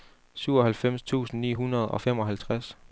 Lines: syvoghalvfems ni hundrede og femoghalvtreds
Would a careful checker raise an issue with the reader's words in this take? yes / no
yes